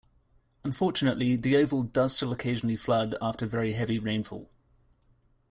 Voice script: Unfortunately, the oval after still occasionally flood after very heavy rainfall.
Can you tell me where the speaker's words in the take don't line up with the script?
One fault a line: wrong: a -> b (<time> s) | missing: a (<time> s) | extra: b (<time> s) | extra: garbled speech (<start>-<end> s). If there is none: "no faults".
wrong: after -> does (1.8 s)